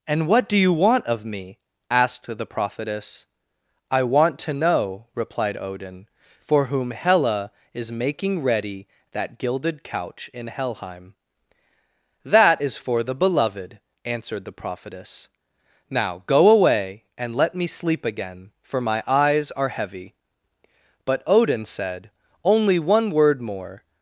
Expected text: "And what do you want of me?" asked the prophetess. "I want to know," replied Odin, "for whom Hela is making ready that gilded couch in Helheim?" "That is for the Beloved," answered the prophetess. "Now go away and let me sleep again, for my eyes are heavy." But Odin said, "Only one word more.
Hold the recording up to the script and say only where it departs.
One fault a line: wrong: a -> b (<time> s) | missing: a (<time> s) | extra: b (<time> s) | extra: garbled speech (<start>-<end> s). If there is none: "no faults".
no faults